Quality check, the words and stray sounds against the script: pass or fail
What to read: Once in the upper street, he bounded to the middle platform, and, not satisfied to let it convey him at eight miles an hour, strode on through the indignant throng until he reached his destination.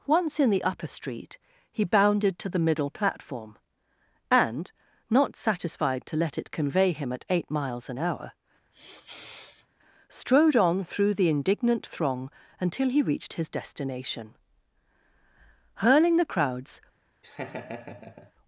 fail